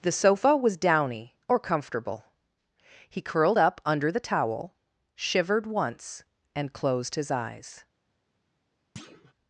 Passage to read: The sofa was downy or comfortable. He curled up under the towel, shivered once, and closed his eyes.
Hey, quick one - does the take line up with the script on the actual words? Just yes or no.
yes